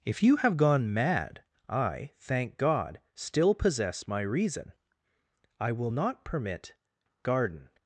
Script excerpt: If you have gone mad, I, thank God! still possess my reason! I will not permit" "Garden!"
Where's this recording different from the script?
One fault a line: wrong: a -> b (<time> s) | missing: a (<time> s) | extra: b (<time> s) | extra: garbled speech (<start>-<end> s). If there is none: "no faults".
no faults